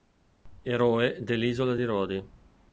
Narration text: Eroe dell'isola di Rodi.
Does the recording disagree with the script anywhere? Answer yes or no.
no